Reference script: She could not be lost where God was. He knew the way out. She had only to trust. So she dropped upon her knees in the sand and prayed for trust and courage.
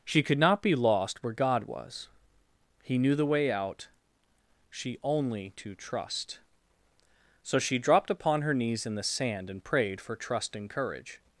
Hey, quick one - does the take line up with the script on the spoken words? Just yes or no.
no